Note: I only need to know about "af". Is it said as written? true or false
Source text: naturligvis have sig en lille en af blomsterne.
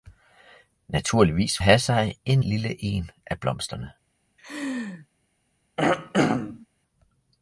true